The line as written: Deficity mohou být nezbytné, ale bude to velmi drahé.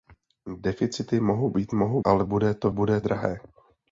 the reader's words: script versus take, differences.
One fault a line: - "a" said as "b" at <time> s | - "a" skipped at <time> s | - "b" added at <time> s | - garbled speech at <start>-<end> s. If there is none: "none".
- "nezbytné" said as "mohou" at 1.7 s
- "velmi" said as "bude" at 2.7 s